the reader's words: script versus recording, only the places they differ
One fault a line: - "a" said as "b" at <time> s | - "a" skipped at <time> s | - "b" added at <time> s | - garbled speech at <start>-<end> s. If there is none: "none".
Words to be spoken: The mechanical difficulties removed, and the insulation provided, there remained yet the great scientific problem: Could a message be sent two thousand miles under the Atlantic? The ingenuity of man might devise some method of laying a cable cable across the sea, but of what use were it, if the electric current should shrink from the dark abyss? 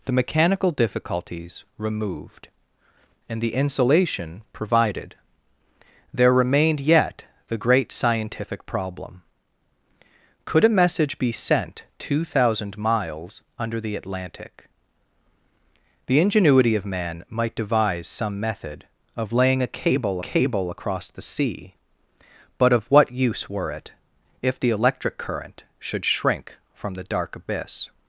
none